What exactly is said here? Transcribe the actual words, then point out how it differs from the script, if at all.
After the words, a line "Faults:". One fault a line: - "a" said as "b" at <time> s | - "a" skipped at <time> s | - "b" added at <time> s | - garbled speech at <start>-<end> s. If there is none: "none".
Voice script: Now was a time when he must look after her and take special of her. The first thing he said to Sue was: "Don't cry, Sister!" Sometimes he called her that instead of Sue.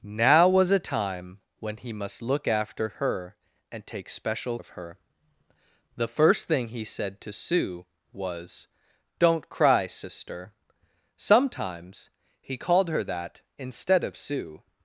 Now was a time when he must look after her and take special of her. The first thing he said to Sue was: "Don't cry, Sister!" Sometimes he called her that instead of Sue.
Faults:
none